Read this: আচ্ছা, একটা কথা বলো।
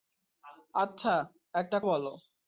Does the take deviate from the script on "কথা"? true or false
true